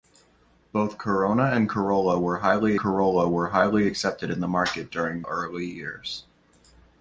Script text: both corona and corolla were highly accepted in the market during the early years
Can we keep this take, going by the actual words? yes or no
no